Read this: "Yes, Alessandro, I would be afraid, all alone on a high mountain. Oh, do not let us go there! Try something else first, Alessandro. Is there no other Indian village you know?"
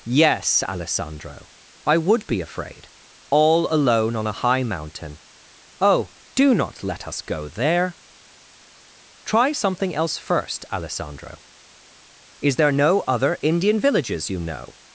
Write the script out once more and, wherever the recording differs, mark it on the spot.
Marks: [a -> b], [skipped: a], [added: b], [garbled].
"Yes, Alessandro, I would be afraid, all alone on a high mountain. Oh, do not let us go there! Try something else first, Alessandro. Is there no other Indian [village -> villages] you know?"